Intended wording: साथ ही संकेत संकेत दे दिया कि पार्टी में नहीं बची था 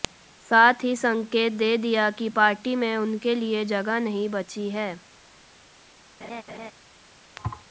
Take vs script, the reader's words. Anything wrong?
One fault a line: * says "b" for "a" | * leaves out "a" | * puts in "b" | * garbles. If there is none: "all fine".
* leaves out "संकेत"
* puts in "उनके लिए जगह"
* says "है" for "था"